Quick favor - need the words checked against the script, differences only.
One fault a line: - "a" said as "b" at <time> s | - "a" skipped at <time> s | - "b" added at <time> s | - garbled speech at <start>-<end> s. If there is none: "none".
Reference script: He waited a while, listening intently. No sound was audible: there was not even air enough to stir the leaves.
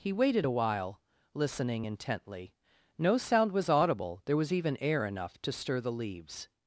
- "not" skipped at 4.5 s